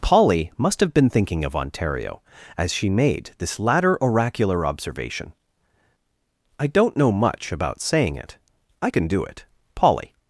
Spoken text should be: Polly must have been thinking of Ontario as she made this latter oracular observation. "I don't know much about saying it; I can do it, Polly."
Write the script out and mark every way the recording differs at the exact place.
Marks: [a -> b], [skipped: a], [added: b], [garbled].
Polly must have been thinking of Ontario as she made this latter oracular observation. "I don't know much about saying it; I can do it, Polly."